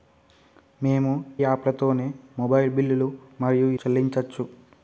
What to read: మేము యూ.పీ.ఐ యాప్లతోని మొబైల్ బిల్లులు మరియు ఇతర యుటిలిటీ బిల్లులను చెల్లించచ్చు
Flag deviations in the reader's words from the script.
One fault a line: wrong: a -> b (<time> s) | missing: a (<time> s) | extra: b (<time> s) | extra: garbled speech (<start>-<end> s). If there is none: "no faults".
missing: యూ.పీ.ఐ (1.1 s)
missing: ఇతర యుటిలిటీ బిల్లులను (3.7 s)